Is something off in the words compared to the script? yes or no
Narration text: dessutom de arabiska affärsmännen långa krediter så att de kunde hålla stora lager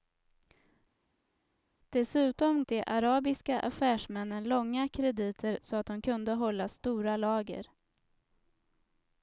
no